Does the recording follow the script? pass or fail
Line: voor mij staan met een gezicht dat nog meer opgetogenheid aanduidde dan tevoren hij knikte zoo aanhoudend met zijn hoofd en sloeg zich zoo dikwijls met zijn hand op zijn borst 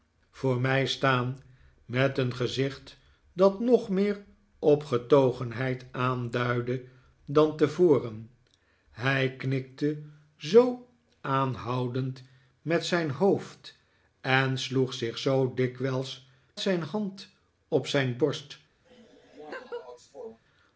fail